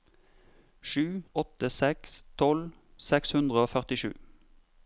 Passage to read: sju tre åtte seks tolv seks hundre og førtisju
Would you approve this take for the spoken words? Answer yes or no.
no